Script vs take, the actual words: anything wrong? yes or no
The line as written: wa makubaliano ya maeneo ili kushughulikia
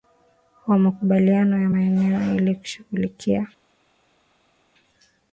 no